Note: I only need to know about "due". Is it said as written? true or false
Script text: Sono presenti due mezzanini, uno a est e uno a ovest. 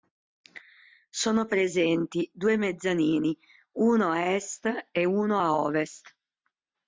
true